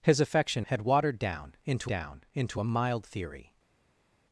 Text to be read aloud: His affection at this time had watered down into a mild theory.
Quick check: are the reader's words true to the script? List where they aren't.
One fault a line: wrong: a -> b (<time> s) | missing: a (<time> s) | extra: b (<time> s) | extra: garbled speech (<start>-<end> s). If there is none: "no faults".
wrong: at this time had watered -> had watered down into (0.7 s)